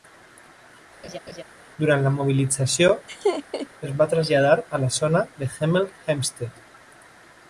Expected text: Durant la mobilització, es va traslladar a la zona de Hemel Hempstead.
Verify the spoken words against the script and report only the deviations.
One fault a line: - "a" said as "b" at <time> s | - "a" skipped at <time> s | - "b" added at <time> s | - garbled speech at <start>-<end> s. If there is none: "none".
none